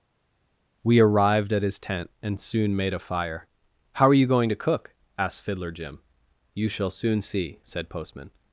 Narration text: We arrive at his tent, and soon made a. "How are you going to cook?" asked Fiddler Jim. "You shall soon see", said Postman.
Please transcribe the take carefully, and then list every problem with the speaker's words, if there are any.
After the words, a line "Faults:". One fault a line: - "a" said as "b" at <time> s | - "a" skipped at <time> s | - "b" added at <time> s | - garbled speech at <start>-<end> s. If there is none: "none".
We arrived at his tent, and soon made a fire. "How are you going to cook?" asked Fiddler Jim. "You shall soon see", said Postman.
Faults:
- "arrive" said as "arrived" at 1.0 s
- "fire" added at 3.0 s